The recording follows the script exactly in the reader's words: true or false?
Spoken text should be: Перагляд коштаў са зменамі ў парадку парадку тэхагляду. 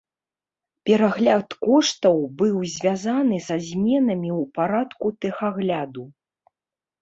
false